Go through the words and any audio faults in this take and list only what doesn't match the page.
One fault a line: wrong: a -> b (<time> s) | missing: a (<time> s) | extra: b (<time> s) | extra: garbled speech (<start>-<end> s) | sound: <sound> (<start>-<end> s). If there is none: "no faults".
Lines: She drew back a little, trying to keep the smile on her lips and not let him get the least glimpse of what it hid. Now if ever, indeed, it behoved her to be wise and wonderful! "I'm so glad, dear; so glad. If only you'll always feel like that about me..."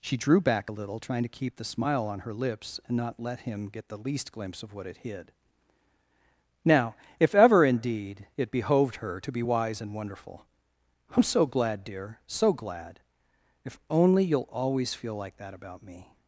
no faults